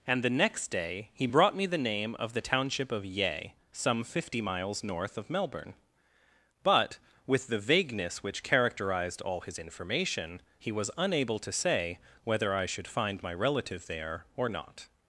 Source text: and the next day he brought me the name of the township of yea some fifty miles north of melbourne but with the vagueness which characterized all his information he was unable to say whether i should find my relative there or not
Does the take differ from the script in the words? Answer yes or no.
no